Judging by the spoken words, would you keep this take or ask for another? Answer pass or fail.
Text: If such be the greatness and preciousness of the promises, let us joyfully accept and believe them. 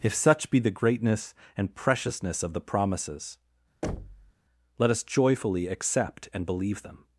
pass